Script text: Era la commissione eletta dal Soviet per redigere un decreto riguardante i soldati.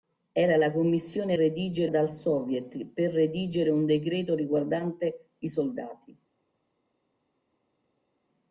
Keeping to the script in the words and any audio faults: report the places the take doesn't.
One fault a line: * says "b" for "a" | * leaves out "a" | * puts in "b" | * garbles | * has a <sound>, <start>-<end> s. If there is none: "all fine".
* says "redigere" for "eletta"